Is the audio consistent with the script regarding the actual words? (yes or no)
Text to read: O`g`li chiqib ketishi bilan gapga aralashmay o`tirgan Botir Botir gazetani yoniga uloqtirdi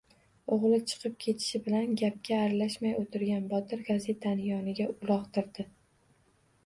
no